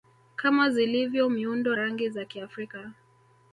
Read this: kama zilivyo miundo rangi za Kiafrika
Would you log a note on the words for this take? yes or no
no